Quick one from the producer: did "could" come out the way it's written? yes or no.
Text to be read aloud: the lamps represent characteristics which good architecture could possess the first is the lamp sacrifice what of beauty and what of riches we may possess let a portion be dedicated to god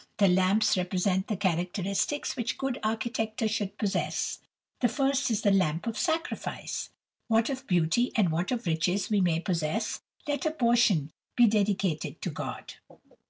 no